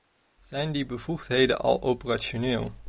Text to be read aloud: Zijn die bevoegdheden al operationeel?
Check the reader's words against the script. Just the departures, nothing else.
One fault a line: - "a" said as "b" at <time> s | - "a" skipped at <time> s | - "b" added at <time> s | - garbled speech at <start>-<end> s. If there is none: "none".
none